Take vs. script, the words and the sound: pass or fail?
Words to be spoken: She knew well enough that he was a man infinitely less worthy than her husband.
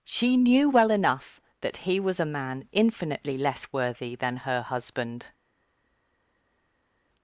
pass